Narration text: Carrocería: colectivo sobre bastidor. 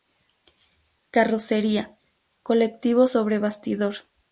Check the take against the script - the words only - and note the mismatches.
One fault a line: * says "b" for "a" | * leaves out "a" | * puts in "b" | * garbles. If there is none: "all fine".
all fine